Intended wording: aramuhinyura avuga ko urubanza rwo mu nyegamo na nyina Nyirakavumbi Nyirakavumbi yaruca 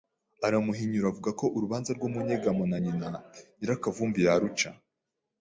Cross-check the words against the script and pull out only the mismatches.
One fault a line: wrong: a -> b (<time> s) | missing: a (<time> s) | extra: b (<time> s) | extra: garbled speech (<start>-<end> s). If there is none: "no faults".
missing: Nyirakavumbi (4.2 s)